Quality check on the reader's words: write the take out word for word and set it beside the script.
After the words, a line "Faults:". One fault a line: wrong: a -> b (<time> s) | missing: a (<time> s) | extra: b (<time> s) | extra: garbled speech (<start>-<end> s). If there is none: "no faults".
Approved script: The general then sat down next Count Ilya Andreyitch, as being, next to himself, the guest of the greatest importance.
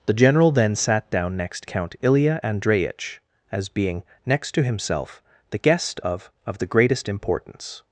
The general then sat down next Count Ilya Andreyitch, as being, next to himself, the guest of of the greatest importance.
Faults:
extra: of (6.5 s)